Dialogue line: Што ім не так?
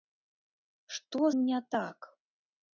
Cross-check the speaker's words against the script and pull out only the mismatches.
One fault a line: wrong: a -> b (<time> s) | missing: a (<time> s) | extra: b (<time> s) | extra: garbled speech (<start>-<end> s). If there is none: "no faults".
no faults